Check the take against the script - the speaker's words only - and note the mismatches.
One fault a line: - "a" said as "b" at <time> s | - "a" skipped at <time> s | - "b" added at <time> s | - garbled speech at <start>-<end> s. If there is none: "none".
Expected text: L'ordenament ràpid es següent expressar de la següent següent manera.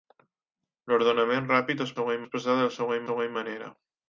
none